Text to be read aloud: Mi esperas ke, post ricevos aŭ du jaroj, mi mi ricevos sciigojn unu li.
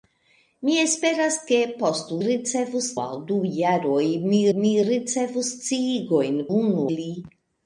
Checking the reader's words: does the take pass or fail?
pass